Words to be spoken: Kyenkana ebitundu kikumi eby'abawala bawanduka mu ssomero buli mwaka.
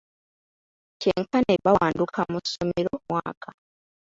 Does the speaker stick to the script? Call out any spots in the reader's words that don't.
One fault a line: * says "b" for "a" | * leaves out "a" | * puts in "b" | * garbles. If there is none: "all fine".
* leaves out "ebitundu kikumi eby'abawala"
* leaves out "buli"